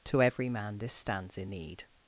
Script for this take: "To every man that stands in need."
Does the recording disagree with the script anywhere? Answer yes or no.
yes